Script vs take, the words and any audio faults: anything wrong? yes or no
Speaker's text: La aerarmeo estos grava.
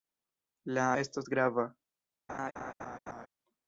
yes